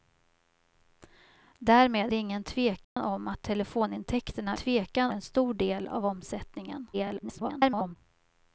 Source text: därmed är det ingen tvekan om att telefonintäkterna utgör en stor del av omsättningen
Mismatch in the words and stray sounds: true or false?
true